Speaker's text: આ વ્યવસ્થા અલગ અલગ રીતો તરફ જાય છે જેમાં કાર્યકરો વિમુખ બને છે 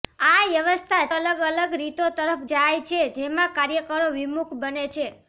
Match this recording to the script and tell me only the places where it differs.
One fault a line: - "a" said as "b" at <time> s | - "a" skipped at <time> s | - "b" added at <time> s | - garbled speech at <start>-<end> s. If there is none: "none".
none